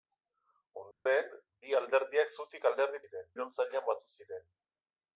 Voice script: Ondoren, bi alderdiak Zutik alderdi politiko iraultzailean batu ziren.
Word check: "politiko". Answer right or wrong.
wrong